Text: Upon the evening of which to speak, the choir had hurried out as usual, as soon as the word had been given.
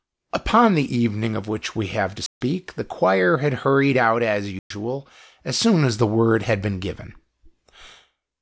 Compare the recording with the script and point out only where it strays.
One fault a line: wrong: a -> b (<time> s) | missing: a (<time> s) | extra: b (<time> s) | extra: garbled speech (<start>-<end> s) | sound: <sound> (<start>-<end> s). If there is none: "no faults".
extra: we have (1.8 s)
sound: dropout (2.3-2.4 s)
sound: dropout (4.6-4.7 s)